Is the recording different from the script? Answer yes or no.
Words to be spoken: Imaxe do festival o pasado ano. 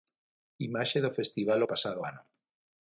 no